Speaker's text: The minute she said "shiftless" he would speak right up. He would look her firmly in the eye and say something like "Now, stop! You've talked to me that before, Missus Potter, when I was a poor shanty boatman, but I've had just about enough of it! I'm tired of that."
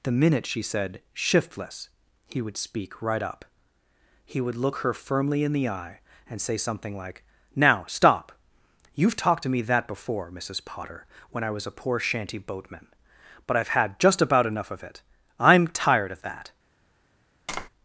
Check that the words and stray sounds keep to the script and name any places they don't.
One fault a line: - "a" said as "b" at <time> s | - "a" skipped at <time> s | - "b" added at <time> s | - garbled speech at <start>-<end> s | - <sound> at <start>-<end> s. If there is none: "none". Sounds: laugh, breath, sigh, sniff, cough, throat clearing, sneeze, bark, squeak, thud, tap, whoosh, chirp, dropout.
- tap at 17.5-17.7 s